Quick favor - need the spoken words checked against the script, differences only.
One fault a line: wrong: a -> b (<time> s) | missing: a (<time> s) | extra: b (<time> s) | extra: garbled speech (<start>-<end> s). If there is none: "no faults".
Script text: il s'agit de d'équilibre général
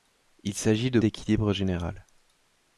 no faults